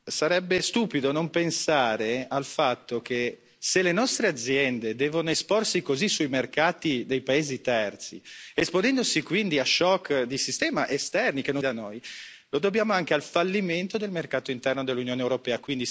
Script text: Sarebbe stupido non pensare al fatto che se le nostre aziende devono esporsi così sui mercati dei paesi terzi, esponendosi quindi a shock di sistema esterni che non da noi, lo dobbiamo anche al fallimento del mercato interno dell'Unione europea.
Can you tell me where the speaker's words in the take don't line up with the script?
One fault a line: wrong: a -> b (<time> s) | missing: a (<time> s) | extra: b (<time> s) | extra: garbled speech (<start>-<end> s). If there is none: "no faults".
no faults